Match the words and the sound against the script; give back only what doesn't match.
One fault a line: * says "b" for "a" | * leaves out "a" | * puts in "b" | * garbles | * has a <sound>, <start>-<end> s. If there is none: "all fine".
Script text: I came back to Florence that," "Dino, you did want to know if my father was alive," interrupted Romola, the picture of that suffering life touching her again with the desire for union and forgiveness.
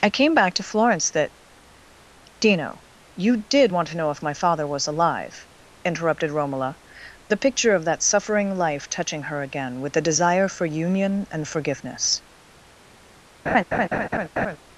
* has a laugh, 13.5-14.6 s